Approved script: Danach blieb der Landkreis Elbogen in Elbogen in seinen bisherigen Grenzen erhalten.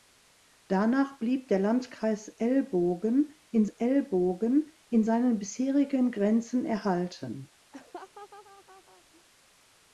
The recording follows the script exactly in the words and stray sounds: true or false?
false